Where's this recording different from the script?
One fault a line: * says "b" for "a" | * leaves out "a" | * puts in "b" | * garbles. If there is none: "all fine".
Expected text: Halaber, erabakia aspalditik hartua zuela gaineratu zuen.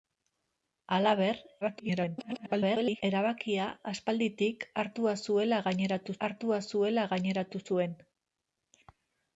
* garbles
* puts in "hartua zuela gaineratu"